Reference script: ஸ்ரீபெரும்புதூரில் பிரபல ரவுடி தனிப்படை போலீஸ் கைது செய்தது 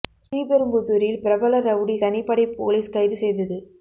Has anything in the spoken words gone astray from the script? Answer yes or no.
no